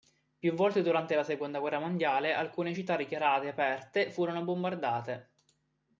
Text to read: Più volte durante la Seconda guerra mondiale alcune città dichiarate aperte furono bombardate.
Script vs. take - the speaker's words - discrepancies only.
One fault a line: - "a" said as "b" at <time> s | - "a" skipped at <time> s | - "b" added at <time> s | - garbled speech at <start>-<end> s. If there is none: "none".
none